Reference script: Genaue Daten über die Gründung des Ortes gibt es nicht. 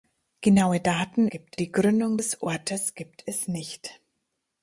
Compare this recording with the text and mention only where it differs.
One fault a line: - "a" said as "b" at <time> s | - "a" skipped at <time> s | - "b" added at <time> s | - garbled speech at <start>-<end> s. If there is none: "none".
- "über" said as "gibt" at 1.3 s